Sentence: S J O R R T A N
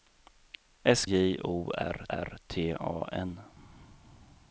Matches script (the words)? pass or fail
pass